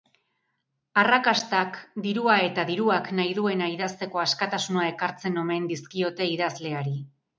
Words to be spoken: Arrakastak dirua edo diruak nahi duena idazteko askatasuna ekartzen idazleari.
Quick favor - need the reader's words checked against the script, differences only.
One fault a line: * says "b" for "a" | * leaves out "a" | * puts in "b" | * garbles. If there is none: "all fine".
* says "eta" for "edo"
* puts in "omen dizkiote"